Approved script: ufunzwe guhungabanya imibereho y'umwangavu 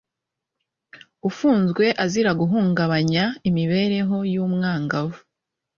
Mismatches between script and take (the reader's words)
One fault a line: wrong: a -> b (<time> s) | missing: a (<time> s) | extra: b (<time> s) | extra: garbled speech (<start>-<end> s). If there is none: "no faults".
extra: azira (2.0 s)